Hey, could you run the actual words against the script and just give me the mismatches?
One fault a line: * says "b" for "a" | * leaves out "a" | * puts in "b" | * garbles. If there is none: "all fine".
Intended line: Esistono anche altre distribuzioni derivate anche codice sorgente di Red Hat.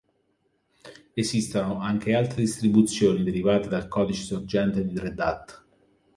* says "dal" for "anche"